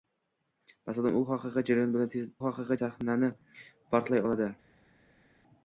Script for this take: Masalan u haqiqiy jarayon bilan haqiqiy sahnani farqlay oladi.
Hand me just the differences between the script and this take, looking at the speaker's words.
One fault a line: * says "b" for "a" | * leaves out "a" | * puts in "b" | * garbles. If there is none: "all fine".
all fine